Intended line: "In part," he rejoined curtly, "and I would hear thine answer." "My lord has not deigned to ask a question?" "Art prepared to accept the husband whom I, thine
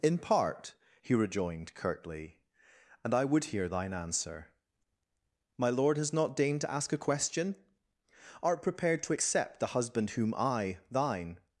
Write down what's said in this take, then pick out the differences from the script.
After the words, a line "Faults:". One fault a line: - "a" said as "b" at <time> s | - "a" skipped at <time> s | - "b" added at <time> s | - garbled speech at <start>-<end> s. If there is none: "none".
"In part," he rejoined curtly, "and I would hear thine answer." "My lord has not deigned to ask a question?" "Art prepared to accept the husband whom I, thine
Faults:
none